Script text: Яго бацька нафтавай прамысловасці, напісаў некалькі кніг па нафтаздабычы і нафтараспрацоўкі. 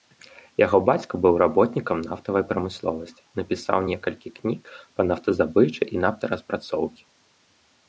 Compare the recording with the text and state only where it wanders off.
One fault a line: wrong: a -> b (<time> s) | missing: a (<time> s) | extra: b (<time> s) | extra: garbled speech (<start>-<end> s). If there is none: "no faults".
extra: быў работнікам (1.2 s)